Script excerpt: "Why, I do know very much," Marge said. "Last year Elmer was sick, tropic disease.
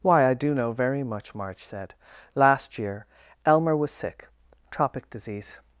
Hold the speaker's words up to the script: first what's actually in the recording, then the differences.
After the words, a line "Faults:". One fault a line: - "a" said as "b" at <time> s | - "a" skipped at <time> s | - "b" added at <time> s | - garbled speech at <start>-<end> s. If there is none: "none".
"Why, I do know very much," Marge said. "Last year Elmer was sick, tropic disease.
Faults:
none